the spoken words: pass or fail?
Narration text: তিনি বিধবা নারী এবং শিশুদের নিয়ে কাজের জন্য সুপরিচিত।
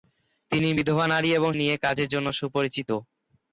fail